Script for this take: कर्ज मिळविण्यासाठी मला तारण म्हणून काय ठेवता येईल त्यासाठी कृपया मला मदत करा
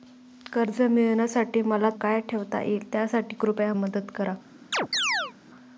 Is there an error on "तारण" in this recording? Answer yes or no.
yes